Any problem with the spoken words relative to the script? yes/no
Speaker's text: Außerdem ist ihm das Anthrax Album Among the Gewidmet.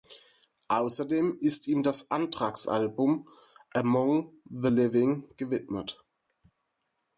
yes